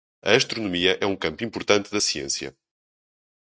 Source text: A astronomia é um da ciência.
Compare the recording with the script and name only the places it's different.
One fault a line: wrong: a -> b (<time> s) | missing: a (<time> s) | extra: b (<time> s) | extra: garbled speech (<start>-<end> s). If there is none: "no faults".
extra: campo importante (1.1 s)